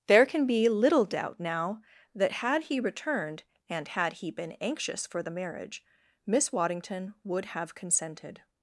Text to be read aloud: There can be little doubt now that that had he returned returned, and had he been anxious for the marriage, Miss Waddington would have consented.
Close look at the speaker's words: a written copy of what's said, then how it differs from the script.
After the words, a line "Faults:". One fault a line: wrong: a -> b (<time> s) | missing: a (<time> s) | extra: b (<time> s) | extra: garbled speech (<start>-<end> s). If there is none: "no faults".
There can be little doubt now that had he returned, and had he been anxious for the marriage, Miss Waddington would have consented.
Faults:
missing: that (2.3 s)
missing: returned (3.4 s)